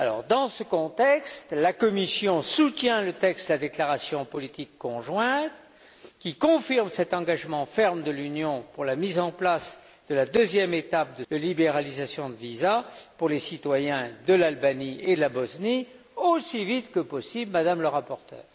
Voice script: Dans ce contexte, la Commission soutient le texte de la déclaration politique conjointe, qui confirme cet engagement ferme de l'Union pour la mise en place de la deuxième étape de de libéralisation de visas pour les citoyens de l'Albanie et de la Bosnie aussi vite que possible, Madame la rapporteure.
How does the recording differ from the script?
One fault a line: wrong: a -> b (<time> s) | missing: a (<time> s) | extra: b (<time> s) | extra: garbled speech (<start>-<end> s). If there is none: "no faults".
no faults